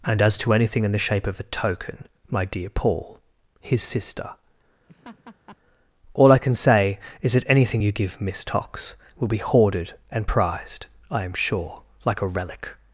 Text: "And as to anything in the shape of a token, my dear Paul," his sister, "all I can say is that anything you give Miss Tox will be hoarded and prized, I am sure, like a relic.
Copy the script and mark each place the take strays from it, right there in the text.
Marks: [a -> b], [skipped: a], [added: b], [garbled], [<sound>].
"And as to anything in the shape of a token, my dear Paul," his sister, [laugh] "all I can say is that anything you give Miss Tox will be hoarded and prized, I am sure, like a relic.